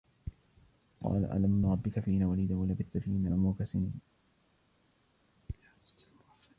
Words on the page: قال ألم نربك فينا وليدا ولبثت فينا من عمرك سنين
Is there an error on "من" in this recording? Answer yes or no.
yes